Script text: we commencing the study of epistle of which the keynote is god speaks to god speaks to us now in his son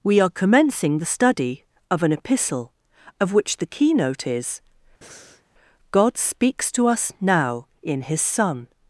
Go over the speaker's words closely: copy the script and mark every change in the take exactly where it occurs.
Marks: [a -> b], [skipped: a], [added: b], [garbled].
we [added: are] commencing the study of [added: an] epistle of which the keynote is god speaks to [skipped: god speaks to] us now in his son